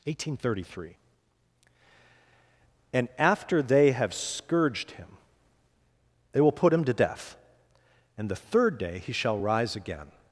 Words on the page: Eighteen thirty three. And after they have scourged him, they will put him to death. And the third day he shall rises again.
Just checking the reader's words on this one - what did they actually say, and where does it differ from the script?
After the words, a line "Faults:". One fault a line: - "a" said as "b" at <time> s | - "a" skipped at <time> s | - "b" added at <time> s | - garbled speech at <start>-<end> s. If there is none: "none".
Eighteen thirty three. And after they have scourged him, they will put him to death. And the third day he shall rise again.
Faults:
- "rises" said as "rise" at 9.4 s